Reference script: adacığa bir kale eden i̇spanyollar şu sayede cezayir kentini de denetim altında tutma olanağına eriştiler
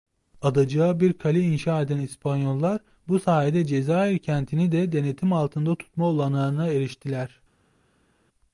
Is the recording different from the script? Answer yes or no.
yes